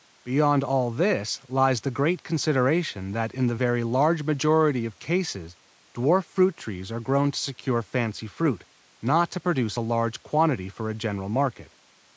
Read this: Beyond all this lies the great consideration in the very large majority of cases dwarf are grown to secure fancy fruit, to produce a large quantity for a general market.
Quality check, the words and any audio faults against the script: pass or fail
fail